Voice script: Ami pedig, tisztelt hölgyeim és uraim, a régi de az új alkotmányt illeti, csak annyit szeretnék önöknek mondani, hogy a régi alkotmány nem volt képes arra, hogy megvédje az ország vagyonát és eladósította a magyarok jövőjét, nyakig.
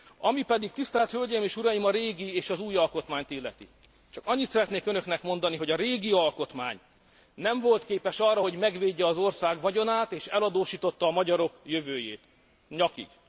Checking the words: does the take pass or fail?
fail